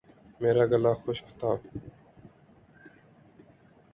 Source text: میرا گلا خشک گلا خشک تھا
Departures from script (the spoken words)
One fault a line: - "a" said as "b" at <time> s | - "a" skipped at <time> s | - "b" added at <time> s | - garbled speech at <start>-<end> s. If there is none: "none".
- "گلا خشک" skipped at 1.3 s